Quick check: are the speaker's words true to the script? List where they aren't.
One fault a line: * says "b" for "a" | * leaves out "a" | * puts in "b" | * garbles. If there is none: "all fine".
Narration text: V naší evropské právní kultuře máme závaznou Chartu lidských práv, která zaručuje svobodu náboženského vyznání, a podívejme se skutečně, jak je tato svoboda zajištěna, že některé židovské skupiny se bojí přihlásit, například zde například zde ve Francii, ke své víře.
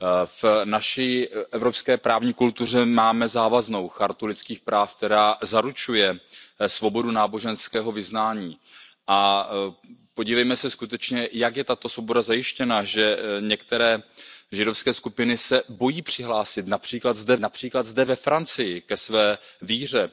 all fine